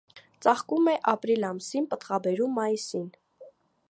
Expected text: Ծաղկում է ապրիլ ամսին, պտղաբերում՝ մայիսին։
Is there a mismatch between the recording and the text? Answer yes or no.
no